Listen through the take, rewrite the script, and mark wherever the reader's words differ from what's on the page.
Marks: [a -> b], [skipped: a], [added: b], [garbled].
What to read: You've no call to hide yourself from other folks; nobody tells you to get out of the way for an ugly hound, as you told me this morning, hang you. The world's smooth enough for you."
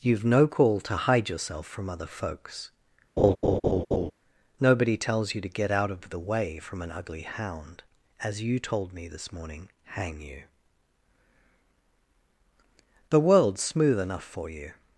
You've no call to hide yourself from other folks; nobody tells you to get out of the way [for -> from] an ugly hound, as you told me this morning, hang you. The world's smooth enough for you."